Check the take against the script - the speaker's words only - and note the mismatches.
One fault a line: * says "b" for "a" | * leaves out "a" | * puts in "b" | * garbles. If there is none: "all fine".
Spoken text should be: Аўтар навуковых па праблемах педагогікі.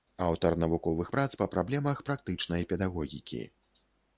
* puts in "прац"
* puts in "практычнай"